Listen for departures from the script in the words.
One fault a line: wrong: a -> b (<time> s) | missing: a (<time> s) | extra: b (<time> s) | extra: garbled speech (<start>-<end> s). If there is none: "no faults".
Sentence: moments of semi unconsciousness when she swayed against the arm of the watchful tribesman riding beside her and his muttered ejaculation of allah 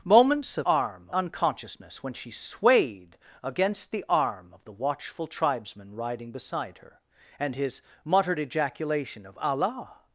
wrong: semi -> arm (0.6 s)